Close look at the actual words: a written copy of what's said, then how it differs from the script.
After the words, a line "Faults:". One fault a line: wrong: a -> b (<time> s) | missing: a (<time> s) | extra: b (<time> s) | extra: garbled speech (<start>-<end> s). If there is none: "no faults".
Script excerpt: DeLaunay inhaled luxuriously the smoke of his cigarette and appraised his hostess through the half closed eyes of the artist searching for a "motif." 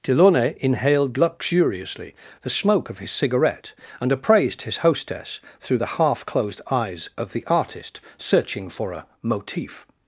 DeLaunay inhaled luxuriously the smoke of his cigarette and appraised his hostess through the half closed eyes of the artist searching for a "motif."
Faults:
no faults